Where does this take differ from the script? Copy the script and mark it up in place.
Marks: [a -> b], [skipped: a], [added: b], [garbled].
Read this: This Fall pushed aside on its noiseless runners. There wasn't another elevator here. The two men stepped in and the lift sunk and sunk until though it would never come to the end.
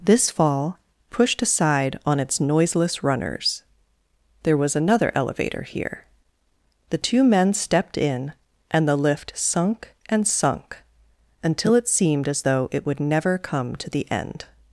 This Fall pushed aside on its noiseless runners. There [wasn't -> was] another elevator here. The two men stepped in and the lift sunk and sunk until [added: it seemed as] though it would never come to the end.